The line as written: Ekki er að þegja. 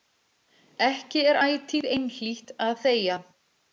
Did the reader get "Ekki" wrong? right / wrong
right